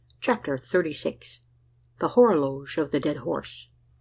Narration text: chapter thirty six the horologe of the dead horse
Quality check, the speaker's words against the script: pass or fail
pass